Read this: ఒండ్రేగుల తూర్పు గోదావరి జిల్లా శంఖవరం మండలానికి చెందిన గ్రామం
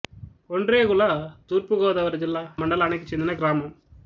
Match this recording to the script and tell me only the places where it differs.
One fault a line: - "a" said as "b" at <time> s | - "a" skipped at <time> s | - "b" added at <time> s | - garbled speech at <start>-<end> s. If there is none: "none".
- "శంఖవరం" skipped at 2.4 s